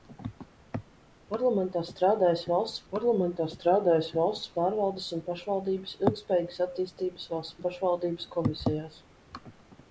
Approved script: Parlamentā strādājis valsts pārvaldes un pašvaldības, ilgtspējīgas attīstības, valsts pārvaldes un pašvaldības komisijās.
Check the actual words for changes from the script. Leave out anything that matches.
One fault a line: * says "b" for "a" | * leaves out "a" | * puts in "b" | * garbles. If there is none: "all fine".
* puts in "parlamentā strādājis valsts"
* leaves out "pārvaldes"